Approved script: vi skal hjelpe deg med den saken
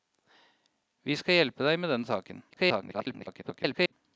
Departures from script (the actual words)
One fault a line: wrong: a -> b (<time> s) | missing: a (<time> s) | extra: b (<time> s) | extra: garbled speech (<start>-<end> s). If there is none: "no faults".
extra: garbled speech (2.5-3.9 s)